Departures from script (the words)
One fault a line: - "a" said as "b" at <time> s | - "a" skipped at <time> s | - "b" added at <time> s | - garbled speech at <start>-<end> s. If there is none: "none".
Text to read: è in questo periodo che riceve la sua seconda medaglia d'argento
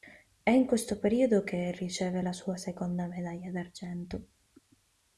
none